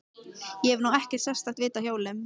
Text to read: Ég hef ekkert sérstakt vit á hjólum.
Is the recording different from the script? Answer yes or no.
yes